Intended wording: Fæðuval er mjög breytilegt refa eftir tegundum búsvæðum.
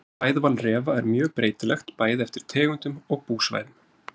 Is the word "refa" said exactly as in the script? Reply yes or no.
no